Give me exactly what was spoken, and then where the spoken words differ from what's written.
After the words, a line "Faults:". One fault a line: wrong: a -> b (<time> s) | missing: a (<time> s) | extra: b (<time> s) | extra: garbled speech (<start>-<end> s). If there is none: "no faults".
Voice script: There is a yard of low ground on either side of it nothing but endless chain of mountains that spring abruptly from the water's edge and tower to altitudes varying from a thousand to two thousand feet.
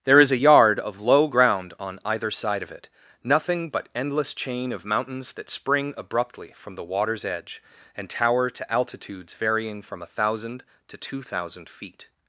There is a yard of low ground on either side of it nothing but endless chain of mountains that spring abruptly from the water's edge and tower to altitudes varying from a thousand to two thousand feet.
Faults:
no faults